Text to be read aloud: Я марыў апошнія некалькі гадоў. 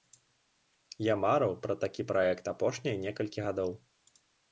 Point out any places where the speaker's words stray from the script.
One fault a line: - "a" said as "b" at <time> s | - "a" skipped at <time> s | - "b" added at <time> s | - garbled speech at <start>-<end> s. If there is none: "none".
- "пра такі праект" added at 1.6 s